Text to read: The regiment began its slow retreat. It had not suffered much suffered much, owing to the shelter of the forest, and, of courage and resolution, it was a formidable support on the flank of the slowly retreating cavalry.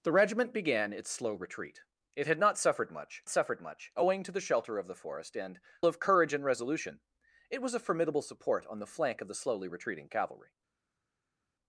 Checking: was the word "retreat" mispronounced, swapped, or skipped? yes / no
no